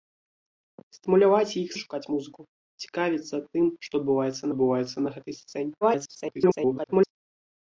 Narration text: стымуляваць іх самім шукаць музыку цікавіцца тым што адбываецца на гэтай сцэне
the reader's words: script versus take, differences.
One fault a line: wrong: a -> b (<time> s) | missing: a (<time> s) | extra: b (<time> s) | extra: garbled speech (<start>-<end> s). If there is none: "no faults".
missing: самім (1.7 s)
extra: адбываецца (4.5 s)
extra: garbled speech (5.8-7.1 s)